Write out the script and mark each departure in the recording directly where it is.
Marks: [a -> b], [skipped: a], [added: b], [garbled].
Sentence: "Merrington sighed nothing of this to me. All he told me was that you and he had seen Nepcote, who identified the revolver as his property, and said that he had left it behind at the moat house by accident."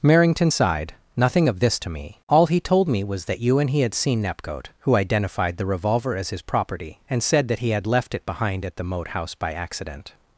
"Merrington sighed nothing of this to me. All he told me was that you and he had seen Nepcote, who identified the revolver as his property, and said that he had left it behind at the moat house by accident."